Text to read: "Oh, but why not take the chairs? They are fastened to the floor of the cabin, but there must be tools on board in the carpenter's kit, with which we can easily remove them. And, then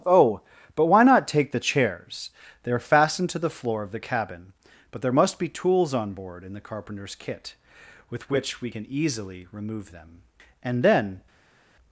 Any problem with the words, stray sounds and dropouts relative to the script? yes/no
no